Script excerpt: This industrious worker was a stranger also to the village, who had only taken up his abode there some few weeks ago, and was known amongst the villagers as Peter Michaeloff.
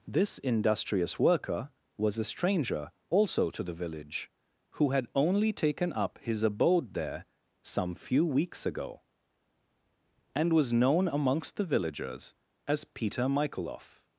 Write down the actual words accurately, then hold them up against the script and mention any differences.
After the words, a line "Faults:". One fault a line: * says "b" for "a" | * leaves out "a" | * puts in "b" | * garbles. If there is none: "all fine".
This industrious worker was a stranger also to the village, who had only taken up his abode there some few weeks ago, and was known amongst the villagers as Peter Michaeloff.
Faults:
all fine